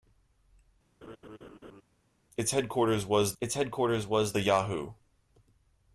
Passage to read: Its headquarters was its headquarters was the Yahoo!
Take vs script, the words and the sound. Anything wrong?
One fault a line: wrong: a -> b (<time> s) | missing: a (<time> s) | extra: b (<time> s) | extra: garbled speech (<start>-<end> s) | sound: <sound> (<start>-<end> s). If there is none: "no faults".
sound: laugh (1.0-1.8 s)